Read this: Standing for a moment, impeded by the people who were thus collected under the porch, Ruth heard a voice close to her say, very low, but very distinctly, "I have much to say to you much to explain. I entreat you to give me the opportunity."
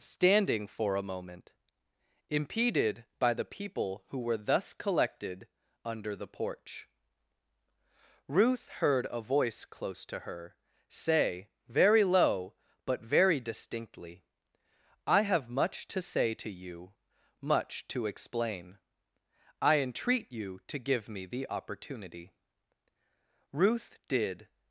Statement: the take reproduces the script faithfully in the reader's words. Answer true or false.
false